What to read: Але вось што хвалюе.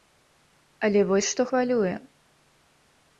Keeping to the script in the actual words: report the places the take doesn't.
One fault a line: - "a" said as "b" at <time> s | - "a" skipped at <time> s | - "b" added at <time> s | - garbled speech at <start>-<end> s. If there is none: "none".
none